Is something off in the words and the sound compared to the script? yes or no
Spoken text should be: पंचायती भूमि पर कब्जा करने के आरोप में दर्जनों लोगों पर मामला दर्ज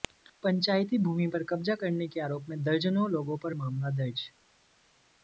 no